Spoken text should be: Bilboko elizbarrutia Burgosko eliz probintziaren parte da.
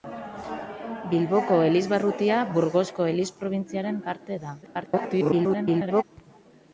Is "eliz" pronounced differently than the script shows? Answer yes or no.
no